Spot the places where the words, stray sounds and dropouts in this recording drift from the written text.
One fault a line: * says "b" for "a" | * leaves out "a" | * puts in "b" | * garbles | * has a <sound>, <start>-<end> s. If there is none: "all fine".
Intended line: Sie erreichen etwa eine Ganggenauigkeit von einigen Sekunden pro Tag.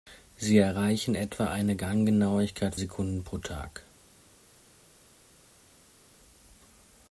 * leaves out "von einigen"